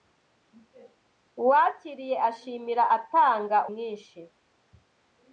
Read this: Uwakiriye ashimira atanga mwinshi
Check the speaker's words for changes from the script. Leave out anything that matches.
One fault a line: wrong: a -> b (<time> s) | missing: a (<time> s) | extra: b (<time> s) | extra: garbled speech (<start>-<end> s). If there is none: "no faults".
no faults